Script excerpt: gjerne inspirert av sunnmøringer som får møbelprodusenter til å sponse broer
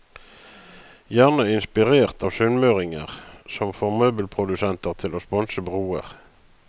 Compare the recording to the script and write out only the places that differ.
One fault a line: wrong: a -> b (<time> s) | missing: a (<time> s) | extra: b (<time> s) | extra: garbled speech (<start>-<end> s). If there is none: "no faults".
no faults